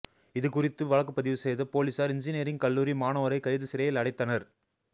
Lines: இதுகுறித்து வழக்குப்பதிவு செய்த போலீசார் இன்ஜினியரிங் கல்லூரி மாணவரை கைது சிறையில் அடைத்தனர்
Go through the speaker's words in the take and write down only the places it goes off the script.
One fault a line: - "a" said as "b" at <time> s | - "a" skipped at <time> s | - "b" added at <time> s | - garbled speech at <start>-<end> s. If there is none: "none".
none